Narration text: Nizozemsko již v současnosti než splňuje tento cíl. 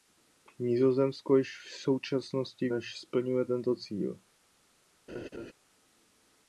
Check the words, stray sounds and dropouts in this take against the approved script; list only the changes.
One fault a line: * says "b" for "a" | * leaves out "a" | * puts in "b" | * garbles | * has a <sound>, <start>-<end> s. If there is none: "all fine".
* has a laugh, 5.1-5.5 s